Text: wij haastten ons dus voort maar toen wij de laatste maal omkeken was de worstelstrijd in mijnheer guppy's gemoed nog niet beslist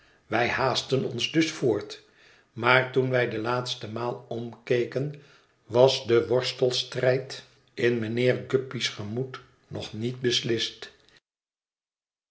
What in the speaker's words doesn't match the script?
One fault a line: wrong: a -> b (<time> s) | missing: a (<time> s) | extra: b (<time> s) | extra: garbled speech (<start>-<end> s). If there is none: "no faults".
no faults